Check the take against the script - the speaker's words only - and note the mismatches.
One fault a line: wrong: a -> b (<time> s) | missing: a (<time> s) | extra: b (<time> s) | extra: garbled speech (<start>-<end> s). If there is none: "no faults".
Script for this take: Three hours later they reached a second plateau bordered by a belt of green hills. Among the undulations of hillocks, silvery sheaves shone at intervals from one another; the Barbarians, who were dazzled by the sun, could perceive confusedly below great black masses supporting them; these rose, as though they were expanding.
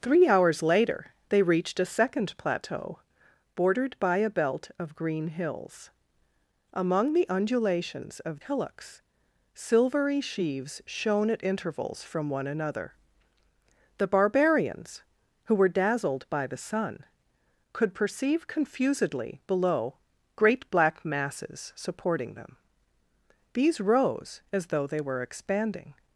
no faults